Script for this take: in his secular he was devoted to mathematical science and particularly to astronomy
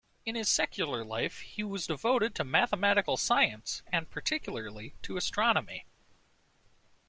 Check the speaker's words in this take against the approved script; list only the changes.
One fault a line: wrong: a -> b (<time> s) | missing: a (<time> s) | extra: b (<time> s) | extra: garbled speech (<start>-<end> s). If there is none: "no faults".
extra: life (1.0 s)